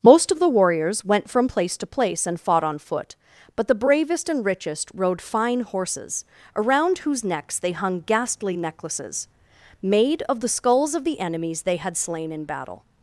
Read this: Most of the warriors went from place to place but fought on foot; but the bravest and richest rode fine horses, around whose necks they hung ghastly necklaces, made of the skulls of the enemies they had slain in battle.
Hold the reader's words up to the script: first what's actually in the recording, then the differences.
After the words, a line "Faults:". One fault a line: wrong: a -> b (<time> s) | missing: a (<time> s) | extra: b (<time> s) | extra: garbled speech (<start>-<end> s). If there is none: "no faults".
Most of the warriors went from place to place and fought on foot; but the bravest and richest rode fine horses, around whose necks they hung ghastly necklaces, made of the skulls of the enemies they had slain in battle.
Faults:
wrong: but -> and (2.2 s)